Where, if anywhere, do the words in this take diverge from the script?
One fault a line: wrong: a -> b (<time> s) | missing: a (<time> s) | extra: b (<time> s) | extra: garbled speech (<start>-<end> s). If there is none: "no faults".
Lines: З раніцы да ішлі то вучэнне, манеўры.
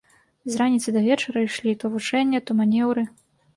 extra: вечара (1.1 s)
extra: то (2.5 s)